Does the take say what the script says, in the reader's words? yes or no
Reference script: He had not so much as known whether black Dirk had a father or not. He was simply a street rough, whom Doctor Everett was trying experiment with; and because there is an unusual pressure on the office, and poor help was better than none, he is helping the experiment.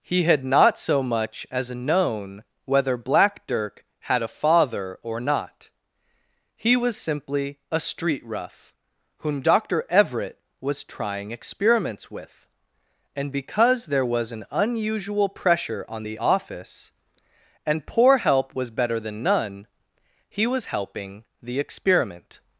no